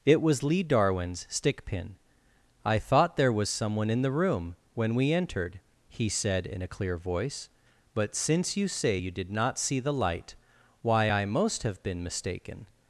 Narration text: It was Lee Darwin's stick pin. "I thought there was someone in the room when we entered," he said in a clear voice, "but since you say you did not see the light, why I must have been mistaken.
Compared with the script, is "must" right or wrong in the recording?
wrong